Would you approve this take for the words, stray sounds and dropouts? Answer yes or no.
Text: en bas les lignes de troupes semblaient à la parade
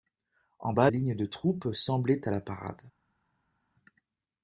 no